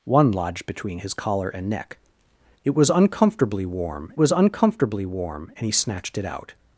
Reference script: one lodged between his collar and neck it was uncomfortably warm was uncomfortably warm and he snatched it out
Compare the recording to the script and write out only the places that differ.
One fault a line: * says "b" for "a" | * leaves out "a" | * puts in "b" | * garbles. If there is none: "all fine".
all fine